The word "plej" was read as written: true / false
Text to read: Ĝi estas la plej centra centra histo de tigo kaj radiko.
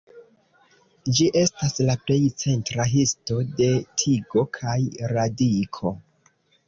true